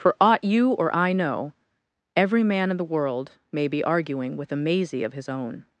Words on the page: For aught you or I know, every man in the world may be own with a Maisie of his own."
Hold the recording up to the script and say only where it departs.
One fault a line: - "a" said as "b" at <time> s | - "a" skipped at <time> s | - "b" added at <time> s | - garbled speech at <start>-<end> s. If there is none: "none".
- "own" said as "arguing" at 3.8 s